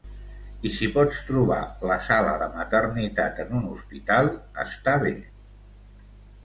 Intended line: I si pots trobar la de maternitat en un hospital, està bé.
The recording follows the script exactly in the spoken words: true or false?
false